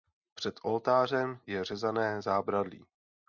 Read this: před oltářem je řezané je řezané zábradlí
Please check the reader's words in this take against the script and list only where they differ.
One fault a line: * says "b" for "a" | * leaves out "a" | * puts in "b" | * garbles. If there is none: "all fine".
* leaves out "je řezané"